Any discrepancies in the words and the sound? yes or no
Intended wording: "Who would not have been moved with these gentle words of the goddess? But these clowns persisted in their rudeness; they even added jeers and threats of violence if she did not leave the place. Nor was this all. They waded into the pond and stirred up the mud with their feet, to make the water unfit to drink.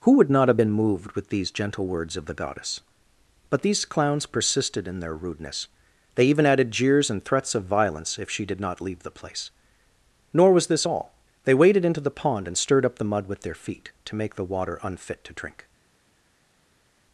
no